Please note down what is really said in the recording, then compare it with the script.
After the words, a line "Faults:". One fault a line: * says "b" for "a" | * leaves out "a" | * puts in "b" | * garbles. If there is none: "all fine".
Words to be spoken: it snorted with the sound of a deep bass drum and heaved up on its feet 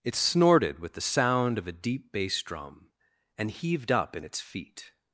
it snorted with the sound of a deep bass drum and heaved up in its feet
Faults:
* says "in" for "on"